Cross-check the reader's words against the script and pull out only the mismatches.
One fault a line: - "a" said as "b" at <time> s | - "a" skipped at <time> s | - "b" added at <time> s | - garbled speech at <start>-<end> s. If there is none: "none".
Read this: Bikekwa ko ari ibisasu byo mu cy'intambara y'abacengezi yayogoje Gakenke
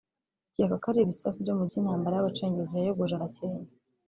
none